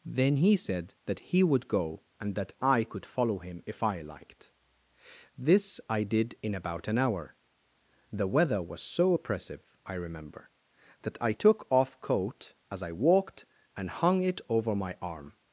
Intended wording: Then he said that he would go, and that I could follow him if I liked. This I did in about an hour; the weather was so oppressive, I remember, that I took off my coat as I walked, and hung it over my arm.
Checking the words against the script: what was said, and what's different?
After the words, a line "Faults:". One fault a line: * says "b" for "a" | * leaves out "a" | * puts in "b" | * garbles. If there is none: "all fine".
Then he said that he would go, and that I could follow him if I liked. This I did in about an hour; the weather was so oppressive, I remember, that I took off coat as I walked, and hung it over my arm.
Faults:
* leaves out "my"